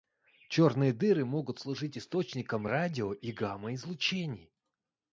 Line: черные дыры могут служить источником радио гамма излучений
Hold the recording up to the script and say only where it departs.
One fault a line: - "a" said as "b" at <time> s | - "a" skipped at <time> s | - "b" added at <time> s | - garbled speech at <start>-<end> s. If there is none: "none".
- "и" added at 3.1 s